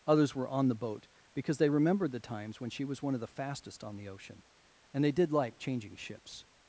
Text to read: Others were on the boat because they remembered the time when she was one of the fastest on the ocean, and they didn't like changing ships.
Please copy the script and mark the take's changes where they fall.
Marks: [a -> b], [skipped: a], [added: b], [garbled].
Others were on the boat because they remembered the [time -> times] when she was one of the fastest on the ocean, and they [didn't -> did] like changing ships.